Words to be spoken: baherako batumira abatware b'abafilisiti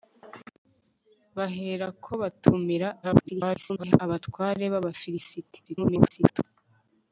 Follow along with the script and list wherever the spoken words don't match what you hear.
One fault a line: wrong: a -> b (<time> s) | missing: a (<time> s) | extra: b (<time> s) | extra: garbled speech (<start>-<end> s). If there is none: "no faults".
extra: garbled speech (3.0-4.0 s)
extra: garbled speech (5.7-6.4 s)